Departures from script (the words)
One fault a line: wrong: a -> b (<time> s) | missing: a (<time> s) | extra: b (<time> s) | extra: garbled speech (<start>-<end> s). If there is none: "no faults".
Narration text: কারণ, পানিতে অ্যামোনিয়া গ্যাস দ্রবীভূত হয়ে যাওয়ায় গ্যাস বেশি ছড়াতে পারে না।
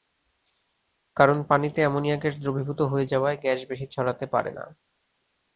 no faults